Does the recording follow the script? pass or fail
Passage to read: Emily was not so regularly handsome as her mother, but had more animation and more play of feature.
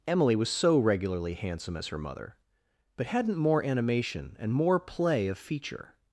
fail